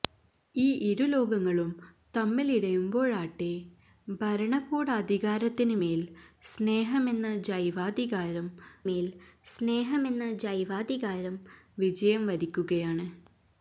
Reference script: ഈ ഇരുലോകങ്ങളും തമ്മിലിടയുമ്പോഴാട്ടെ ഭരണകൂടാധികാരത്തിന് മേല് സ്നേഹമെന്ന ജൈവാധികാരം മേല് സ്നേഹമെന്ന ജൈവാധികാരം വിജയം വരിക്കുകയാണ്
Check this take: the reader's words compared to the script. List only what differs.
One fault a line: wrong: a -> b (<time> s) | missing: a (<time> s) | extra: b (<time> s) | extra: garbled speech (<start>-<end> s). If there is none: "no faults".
no faults